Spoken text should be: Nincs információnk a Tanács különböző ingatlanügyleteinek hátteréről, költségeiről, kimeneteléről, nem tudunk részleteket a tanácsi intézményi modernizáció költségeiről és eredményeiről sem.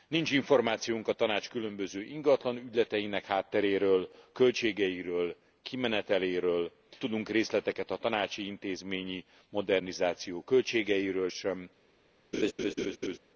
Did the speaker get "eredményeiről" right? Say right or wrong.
wrong